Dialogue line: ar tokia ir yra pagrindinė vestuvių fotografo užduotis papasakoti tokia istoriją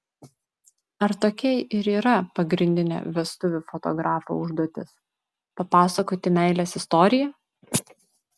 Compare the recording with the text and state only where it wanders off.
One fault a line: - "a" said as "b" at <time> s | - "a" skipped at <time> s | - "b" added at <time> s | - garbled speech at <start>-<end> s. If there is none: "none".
- "tokia" said as "meilės" at 6.4 s